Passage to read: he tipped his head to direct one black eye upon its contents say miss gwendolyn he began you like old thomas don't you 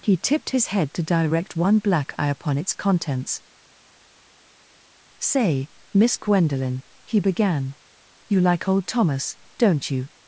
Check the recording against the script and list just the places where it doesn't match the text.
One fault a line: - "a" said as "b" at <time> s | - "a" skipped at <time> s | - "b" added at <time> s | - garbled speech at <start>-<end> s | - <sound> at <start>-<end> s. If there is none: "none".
none